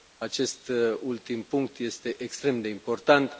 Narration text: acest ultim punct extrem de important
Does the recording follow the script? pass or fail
fail